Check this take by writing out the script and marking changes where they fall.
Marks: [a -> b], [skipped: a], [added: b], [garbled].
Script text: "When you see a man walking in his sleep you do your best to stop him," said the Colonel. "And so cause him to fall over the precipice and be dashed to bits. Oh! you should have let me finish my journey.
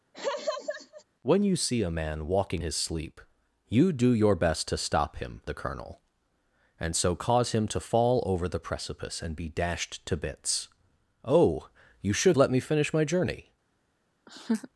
"When you see a man walking [skipped: in] his sleep you do your best to stop him," [skipped: said] the Colonel. "And so cause him to fall over the precipice and be dashed to bits. Oh! you should [skipped: have] let me finish my journey.